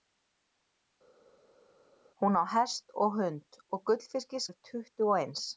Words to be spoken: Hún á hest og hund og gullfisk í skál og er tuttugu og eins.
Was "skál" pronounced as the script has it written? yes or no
no